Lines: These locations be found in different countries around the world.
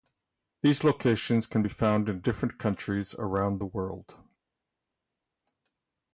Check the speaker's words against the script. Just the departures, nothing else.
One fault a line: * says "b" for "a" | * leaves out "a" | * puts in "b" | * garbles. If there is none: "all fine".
* puts in "can"